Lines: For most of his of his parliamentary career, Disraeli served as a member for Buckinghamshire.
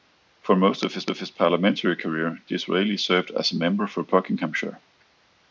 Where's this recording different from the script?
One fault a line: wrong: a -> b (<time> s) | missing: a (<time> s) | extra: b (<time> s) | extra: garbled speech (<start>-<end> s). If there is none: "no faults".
no faults